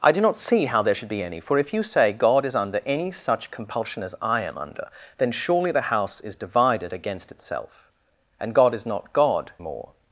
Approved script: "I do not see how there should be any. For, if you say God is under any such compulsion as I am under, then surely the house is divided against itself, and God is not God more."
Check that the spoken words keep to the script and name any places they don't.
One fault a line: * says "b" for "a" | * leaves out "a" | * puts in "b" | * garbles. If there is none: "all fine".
all fine